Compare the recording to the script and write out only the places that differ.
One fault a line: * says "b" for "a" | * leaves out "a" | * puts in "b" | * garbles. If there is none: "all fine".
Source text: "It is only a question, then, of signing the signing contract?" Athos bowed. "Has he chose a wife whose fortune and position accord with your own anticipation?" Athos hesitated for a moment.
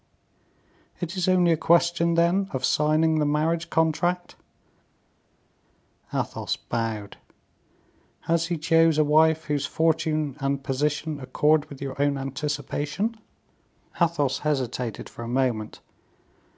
* says "marriage" for "signing"